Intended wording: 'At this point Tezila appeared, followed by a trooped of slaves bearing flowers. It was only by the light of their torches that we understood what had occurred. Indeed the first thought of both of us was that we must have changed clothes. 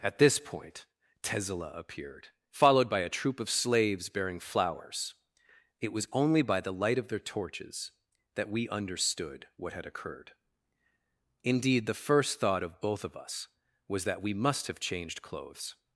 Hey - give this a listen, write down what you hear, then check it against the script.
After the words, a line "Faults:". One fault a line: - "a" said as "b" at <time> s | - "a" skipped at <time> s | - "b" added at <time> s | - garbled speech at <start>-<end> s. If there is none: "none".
'At this point Tezila appeared, followed by a troop of slaves bearing flowers. It was only by the light of their torches that we understood what had occurred. Indeed the first thought of both of us was that we must have changed clothes.
Faults:
- "trooped" said as "troop" at 3.1 s